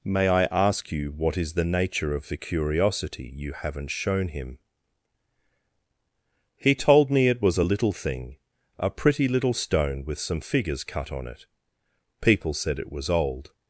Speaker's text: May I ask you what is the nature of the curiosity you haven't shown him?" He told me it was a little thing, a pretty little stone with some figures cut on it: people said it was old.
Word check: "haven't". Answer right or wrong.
right